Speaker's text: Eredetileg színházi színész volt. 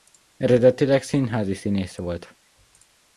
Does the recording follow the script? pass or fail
pass